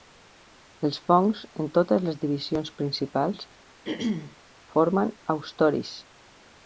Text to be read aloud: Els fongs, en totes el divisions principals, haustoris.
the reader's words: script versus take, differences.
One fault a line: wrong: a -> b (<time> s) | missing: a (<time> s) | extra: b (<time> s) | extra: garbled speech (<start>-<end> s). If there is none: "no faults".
wrong: el -> les (2.1 s)
extra: formen (4.8 s)